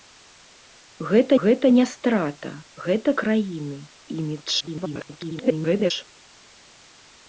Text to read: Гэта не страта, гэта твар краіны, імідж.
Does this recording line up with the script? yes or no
no